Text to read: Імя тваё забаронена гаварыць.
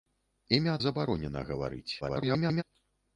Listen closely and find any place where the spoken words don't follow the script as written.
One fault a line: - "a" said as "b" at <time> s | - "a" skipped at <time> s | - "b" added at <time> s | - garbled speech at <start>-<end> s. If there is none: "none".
- "тваё" skipped at 0.8 s
- garbled speech at 2.0-2.6 s